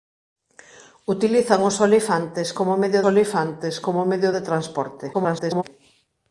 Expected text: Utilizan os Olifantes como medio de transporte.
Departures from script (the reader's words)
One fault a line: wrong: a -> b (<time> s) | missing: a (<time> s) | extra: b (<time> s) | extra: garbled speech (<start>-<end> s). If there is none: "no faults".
extra: Olifantes como medio (3.1 s)
extra: garbled speech (5.1-5.6 s)